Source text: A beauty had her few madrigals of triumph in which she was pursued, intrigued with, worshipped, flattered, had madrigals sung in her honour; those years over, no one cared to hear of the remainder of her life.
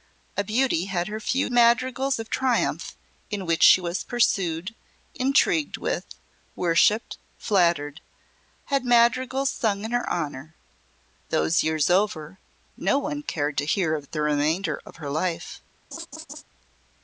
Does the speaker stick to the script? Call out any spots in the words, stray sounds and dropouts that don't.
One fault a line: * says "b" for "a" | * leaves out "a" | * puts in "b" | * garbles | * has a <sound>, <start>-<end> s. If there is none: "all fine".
* has a laugh, 15.9-16.4 s